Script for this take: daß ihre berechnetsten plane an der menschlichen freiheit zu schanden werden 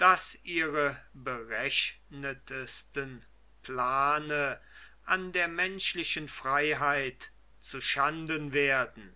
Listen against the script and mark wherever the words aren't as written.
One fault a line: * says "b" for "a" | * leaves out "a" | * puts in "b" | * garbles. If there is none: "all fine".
all fine